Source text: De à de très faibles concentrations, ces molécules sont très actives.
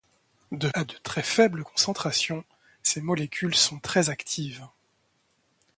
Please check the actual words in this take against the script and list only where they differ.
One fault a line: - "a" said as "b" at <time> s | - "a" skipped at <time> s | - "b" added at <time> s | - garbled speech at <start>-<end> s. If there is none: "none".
none